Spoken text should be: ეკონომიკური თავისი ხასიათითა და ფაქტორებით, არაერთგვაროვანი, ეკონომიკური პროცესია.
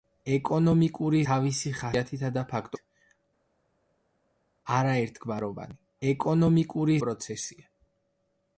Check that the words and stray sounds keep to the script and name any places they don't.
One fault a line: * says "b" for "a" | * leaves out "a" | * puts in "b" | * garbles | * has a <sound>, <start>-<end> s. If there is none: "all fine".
all fine